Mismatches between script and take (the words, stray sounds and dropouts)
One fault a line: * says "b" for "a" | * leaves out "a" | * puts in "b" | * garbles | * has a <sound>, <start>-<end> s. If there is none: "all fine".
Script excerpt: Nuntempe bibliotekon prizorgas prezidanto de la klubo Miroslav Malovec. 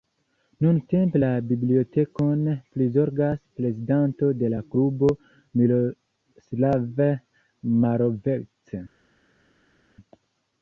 * puts in "la"